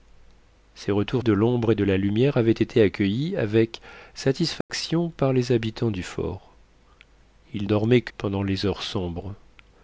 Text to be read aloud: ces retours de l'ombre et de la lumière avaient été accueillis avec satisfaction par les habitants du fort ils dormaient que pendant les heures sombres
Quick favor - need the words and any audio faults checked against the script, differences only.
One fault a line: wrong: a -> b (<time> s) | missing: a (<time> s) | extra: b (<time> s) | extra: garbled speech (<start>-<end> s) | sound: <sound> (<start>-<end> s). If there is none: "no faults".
sound: dropout (4.6-4.7 s)